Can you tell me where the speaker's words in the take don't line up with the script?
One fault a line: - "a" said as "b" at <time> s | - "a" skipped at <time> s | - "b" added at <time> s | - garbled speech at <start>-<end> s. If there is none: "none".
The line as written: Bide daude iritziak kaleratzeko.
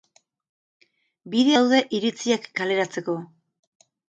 none